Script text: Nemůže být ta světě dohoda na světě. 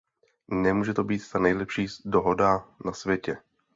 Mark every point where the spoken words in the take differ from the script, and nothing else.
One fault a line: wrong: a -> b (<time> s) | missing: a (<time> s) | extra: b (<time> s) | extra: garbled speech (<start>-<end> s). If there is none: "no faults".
extra: to (0.9 s)
wrong: světě -> nejlepší (1.4 s)